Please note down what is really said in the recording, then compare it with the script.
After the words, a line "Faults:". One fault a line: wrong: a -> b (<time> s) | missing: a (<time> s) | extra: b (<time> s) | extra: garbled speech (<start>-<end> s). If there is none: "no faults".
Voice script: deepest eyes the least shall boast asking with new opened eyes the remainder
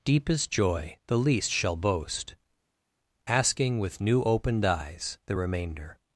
deepest joy the least shall boast asking with new opened eyes the remainder
Faults:
wrong: eyes -> joy (0.5 s)